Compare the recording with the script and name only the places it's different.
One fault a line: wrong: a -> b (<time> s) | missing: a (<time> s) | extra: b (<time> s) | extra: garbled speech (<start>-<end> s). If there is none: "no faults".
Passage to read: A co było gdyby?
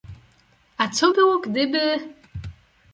no faults